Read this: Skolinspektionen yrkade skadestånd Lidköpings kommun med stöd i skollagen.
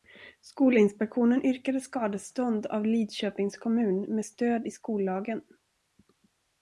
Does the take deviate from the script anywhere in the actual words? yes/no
yes